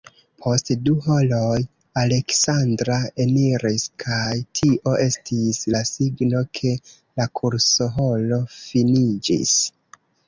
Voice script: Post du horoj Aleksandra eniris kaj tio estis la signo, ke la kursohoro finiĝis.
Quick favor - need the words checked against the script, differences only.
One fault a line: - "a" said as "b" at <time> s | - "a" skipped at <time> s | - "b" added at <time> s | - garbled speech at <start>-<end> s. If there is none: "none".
none